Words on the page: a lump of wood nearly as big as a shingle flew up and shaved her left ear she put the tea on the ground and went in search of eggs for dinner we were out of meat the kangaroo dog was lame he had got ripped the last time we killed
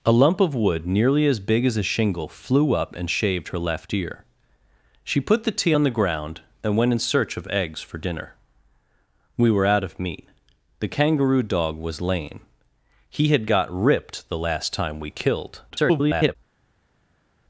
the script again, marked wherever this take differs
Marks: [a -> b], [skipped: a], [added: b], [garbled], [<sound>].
a lump of wood nearly as big as a shingle flew up and shaved her left ear she put the tea on the ground and went in search of eggs for dinner we were out of meat the kangaroo dog was lame he had got ripped the last time we killed [garbled]